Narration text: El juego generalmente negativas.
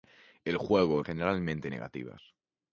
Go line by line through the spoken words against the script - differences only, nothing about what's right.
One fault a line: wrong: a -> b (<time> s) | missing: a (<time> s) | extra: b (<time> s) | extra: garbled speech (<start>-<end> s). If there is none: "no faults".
no faults